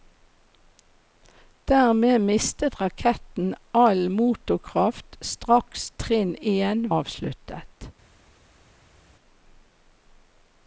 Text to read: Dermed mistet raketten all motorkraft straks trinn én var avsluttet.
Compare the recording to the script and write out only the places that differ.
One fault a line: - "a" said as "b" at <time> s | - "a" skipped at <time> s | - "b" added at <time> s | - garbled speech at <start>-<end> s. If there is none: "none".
- "var" skipped at 6.9 s